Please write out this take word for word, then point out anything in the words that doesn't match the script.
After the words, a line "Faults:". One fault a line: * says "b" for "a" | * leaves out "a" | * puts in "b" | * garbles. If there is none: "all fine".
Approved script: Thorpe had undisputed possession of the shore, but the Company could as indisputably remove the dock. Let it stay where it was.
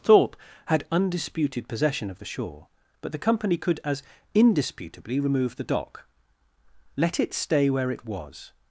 Thorpe had undisputed possession of the shore, but the Company could as indisputably remove the dock. Let it stay where it was.
Faults:
all fine